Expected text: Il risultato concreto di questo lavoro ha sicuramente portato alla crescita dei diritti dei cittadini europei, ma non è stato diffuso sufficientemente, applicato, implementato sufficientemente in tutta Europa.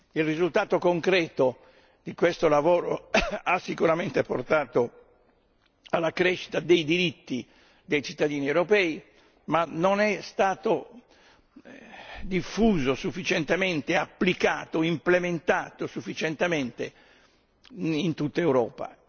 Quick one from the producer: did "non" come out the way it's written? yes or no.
yes